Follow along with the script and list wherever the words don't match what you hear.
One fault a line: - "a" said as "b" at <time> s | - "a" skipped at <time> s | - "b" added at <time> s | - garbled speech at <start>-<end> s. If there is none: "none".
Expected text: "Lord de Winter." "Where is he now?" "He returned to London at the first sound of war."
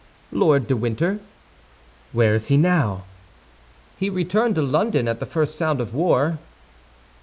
none